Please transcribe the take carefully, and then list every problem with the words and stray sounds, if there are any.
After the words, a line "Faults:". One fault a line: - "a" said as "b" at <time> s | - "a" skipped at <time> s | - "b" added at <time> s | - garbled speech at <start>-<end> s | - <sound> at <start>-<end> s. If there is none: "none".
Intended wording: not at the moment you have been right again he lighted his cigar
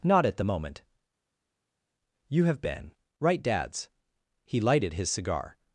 not at the moment you have been right dads he lighted his cigar
Faults:
- "again" said as "dads" at 3.4 s